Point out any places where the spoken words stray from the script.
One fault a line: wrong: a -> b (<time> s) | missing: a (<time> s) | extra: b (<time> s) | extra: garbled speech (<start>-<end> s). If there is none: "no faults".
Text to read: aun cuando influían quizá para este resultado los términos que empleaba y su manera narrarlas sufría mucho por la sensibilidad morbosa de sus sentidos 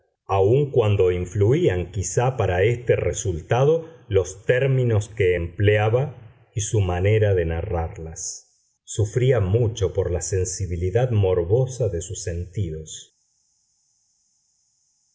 extra: de (7.3 s)